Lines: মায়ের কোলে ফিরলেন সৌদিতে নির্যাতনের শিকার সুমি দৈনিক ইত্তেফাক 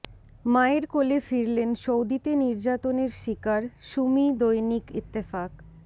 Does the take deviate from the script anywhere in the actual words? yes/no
no